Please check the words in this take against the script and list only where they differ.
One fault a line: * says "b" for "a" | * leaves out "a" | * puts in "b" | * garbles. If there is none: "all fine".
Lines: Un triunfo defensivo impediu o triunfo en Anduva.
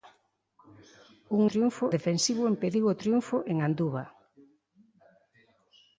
all fine